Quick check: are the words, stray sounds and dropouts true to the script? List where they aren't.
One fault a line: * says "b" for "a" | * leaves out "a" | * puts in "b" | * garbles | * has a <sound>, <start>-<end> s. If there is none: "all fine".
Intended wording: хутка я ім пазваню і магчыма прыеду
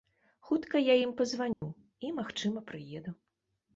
* has a dropout, 1.5-1.6 s